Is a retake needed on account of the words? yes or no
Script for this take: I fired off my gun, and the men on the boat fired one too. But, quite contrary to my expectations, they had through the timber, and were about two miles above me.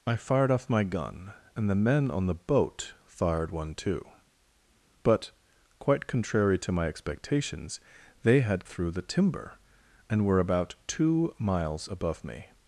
no